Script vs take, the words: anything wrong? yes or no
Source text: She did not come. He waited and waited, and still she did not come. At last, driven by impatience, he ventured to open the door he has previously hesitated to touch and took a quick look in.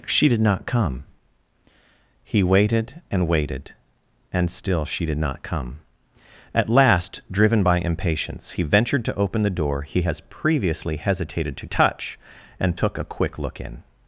no